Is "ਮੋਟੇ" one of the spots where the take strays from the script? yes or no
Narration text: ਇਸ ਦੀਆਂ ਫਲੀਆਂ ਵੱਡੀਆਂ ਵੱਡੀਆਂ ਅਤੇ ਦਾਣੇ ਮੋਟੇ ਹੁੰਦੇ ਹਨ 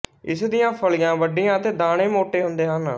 no